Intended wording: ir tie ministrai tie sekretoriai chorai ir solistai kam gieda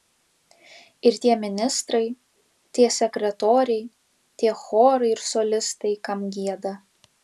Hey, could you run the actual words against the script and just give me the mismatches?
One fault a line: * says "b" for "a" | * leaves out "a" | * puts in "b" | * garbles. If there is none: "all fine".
* puts in "tie"